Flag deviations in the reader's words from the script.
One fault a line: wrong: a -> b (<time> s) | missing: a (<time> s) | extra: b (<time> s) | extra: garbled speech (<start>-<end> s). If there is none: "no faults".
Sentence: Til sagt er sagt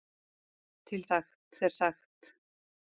no faults